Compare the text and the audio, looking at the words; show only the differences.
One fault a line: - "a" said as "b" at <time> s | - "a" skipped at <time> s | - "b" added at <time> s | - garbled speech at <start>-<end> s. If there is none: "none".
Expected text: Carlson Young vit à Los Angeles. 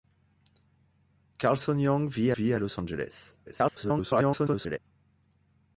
- "vit" added at 2.3 s
- garbled speech at 3.5-4.8 s